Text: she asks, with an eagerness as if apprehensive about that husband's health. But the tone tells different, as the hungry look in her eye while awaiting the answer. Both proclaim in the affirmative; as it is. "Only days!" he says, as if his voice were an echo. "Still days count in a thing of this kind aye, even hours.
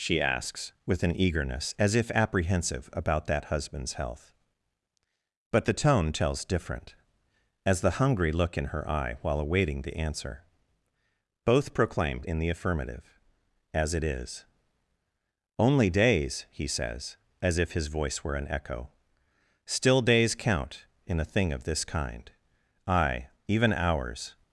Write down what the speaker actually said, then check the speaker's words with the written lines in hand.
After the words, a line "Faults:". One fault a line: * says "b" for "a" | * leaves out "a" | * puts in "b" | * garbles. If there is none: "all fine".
she asks, with an eagerness as if apprehensive about that husband's health. But the tone tells different, as the hungry look in her eye while awaiting the answer. Both proclaim in the affirmative; as it is. "Only days!" he says, as if his voice were an echo. "Still days count in a thing of this kind aye, even hours.
Faults:
all fine